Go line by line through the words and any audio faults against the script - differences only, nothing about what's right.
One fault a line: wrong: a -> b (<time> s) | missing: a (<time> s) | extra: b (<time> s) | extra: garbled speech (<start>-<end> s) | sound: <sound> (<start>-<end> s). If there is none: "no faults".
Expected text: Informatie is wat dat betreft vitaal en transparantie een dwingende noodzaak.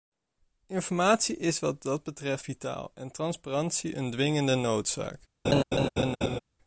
sound: laugh (5.4-6.4 s)